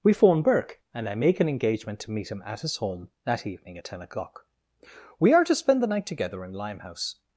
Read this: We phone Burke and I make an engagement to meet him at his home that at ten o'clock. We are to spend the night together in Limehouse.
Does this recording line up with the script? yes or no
no